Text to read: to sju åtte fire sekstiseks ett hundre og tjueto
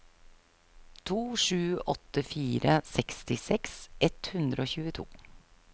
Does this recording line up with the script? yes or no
yes